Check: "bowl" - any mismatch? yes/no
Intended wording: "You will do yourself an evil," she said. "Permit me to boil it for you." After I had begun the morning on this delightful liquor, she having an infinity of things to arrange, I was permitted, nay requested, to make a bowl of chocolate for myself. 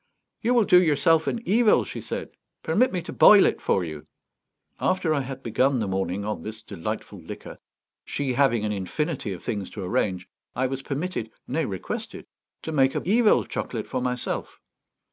yes